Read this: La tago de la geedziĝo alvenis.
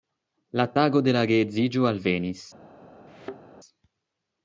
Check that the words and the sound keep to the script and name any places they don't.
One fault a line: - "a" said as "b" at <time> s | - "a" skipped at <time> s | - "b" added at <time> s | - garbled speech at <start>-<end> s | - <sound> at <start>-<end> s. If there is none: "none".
- thud at 3.1-3.4 s